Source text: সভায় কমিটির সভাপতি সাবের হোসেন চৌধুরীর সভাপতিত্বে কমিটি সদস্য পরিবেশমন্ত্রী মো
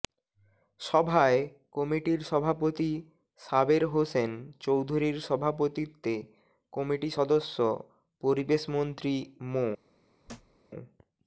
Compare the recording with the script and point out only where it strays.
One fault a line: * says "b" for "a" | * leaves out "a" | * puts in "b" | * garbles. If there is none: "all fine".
all fine